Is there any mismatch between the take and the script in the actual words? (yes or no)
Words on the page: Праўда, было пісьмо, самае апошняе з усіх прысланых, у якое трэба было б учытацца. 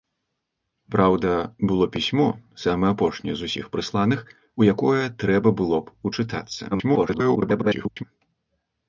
yes